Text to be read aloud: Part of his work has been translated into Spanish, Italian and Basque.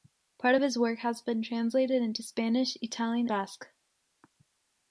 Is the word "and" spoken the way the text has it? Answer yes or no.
no